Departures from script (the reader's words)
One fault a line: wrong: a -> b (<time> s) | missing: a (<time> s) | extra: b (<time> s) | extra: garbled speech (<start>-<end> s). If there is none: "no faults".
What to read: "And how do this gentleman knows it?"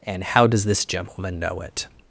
wrong: do -> does (0.5 s)
wrong: knows -> know (1.4 s)